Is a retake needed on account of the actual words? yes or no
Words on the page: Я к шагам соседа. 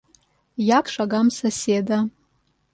no